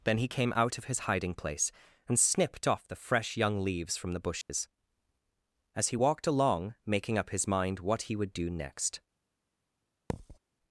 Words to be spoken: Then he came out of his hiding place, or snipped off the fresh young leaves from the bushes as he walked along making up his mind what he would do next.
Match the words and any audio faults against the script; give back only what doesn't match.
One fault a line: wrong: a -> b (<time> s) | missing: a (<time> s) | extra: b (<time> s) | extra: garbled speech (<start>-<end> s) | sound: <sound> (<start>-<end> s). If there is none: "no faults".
wrong: or -> and (2.1 s)
sound: dropout (4.4-4.5 s)
sound: thud (10.1-10.4 s)